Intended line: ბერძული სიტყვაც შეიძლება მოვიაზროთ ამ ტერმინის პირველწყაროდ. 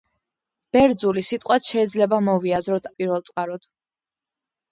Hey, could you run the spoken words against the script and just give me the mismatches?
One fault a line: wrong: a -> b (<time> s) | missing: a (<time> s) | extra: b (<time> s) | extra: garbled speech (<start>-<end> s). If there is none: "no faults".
missing: ამ ტერმინის (2.9 s)